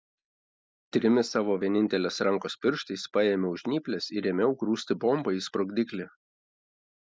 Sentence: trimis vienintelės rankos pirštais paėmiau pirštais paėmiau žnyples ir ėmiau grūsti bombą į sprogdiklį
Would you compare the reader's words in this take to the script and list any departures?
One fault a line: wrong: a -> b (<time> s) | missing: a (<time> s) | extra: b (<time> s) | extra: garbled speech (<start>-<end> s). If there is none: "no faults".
extra: savo (1.4 s)
missing: pirštais paėmiau (3.6 s)